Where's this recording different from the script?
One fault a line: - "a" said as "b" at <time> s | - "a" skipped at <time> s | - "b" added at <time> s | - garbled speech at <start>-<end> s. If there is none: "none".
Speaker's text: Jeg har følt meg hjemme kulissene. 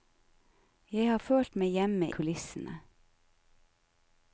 none